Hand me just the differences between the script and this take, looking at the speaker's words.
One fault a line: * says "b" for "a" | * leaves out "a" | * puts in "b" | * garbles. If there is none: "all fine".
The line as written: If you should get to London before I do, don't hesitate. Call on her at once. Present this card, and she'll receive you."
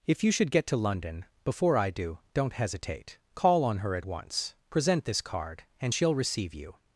all fine